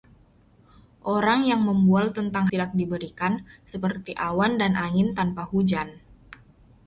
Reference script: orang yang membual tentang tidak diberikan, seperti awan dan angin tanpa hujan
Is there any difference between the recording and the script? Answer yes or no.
no